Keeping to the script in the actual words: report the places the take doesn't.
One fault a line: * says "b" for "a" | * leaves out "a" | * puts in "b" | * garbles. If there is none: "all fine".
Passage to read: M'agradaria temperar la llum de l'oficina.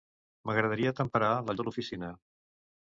* leaves out "llum"